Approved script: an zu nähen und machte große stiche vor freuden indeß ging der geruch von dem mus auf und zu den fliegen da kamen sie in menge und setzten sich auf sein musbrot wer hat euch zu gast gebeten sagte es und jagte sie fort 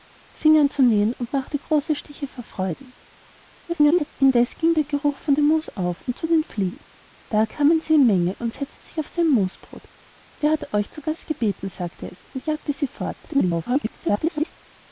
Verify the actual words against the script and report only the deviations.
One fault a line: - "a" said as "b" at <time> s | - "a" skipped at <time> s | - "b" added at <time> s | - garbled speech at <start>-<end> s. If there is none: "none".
- garbled speech at 3.7-4.1 s
- garbled speech at 13.2-14.5 s